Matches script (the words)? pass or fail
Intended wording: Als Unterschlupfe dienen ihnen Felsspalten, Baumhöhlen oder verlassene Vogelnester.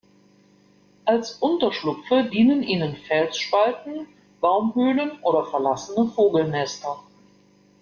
pass